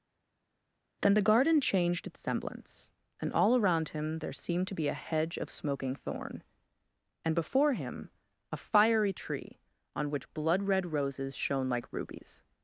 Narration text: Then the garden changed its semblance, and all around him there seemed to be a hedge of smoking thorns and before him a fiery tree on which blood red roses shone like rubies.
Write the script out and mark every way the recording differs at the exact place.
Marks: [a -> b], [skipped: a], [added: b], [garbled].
Then the garden changed its semblance, and all around him there seemed to be a hedge of smoking [thorns -> thorn] and before him a fiery tree on which blood red roses shone like rubies.